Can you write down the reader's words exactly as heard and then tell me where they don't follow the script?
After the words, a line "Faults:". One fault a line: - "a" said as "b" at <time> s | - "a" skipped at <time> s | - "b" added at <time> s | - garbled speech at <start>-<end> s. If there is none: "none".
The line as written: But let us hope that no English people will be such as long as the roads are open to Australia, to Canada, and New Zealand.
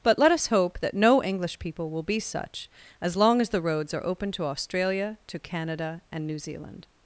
But let us hope that no English people will be such as long as the roads are open to Australia, to Canada, and New Zealand.
Faults:
none